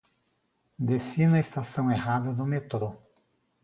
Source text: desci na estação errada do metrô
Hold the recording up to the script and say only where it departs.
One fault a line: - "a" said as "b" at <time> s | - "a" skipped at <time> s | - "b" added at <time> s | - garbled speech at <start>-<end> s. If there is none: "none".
none